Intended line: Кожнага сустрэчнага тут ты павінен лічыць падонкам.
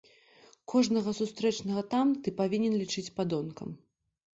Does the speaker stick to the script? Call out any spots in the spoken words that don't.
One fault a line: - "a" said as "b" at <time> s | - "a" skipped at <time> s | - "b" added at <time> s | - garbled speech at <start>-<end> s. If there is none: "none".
- "тут" said as "там" at 2.0 s